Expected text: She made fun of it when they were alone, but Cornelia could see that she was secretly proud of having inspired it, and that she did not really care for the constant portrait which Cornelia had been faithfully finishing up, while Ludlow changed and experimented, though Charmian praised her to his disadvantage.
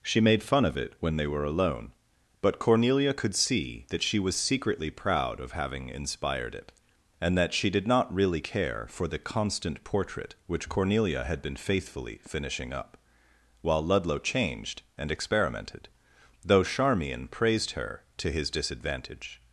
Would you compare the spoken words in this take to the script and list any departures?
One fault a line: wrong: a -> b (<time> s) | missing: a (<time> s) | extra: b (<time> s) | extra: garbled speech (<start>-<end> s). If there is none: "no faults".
no faults